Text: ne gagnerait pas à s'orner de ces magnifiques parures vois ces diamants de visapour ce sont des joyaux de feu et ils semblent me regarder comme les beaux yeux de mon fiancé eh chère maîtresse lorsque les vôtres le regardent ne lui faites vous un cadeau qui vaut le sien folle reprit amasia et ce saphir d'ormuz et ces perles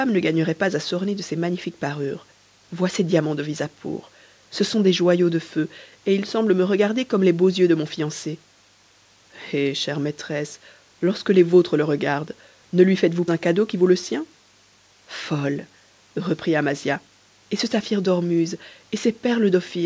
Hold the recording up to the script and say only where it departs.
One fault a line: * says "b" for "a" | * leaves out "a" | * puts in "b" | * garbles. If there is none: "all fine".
all fine